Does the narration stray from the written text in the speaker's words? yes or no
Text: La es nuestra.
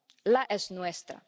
no